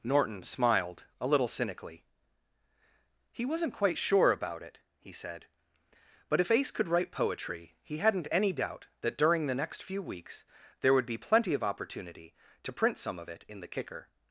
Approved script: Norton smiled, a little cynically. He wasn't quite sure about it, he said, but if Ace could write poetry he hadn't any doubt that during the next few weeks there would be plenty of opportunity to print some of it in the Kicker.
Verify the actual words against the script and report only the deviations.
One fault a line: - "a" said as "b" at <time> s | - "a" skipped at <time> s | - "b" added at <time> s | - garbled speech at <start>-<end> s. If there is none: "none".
none